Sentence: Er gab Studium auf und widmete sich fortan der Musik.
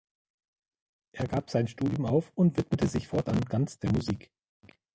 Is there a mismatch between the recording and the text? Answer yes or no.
yes